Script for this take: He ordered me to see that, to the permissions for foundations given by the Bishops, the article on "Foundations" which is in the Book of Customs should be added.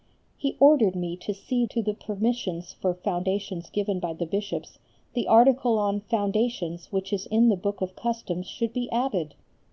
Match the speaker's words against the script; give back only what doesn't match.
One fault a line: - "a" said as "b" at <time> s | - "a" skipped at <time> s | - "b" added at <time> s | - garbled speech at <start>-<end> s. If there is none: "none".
- "that" skipped at 1.6 s